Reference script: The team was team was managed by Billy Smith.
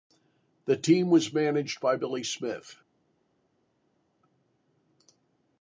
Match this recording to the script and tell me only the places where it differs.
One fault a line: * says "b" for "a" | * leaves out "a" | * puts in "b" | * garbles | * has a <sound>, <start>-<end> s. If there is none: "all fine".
* leaves out "team was"